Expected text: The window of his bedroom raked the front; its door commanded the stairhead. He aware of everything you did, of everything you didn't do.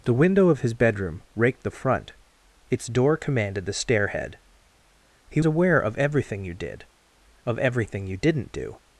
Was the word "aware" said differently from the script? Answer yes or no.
no